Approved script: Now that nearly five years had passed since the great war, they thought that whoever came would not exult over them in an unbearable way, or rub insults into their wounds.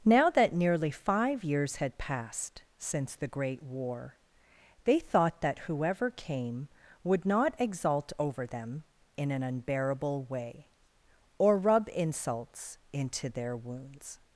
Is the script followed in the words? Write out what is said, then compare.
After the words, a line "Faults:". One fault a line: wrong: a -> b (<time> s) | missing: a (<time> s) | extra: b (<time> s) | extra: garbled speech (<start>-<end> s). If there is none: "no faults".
Now that nearly five years had passed since the great war, they thought that whoever came would not exult over them in an unbearable way, or rub insults into their wounds.
Faults:
no faults